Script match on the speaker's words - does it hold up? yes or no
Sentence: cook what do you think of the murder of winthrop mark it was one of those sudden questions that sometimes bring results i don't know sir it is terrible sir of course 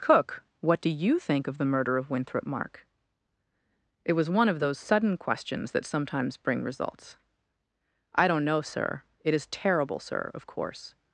yes